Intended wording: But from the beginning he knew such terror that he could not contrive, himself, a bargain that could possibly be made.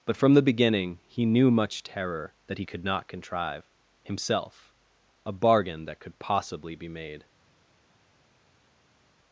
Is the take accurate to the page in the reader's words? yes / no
no